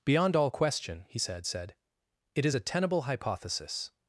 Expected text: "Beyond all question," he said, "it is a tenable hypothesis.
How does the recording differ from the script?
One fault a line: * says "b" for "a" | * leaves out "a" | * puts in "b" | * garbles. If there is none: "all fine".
* puts in "said"